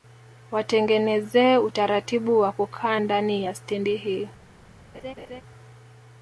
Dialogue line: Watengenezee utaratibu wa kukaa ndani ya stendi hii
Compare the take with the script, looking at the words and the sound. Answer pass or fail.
fail